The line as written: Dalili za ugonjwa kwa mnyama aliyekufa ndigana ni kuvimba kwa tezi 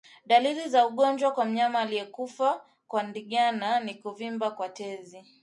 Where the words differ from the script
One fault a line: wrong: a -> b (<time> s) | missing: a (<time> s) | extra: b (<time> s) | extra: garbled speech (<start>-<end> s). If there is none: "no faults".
extra: kwa (2.9 s)